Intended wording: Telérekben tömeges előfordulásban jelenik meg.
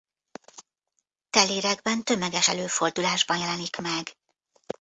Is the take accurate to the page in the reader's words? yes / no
yes